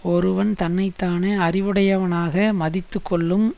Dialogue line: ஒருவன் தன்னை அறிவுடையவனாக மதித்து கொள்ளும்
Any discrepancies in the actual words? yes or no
yes